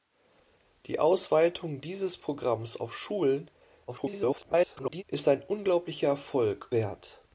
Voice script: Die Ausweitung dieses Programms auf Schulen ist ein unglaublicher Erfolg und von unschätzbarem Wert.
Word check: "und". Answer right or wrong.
wrong